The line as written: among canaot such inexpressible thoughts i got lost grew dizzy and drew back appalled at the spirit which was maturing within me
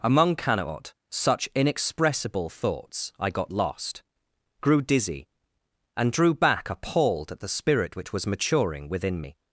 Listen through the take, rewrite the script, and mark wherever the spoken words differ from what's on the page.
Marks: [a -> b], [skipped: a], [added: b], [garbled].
among canaot such inexpressible thoughts i got lost grew dizzy and drew back appalled at the spirit which was maturing within me